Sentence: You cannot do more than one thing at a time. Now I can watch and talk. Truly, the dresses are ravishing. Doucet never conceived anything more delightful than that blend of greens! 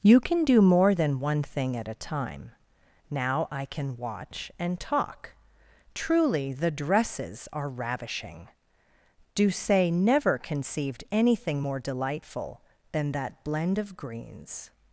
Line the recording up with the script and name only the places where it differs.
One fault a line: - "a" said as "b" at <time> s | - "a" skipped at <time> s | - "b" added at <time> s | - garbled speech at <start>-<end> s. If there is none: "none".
- "cannot" said as "can" at 0.2 s